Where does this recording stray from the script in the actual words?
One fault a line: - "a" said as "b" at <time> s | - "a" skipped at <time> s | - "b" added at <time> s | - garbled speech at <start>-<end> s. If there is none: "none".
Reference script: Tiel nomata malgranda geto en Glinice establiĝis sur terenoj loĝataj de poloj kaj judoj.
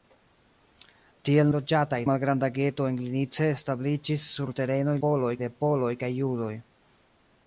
- "nomata" said as "loĝataj" at 1.6 s
- "loĝataj" said as "poloj" at 5.1 s